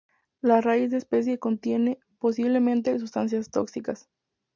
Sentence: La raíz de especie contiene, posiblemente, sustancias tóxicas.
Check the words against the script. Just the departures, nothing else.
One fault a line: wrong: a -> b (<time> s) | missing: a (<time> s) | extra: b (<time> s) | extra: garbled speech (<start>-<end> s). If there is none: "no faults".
no faults